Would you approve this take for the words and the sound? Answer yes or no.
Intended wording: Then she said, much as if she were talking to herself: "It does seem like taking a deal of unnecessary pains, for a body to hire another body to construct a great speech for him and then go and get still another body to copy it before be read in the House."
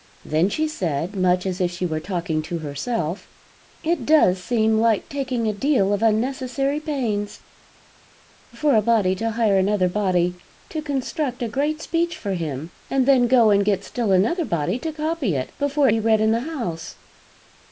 yes